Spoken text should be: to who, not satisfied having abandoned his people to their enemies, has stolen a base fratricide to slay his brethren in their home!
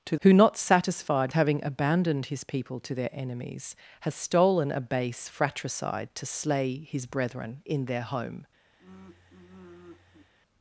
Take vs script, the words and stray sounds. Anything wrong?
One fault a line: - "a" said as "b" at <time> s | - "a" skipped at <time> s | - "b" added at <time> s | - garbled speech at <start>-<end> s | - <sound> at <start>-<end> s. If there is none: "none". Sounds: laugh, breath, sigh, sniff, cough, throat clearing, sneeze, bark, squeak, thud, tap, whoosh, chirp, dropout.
- sigh at 8.8-10.3 s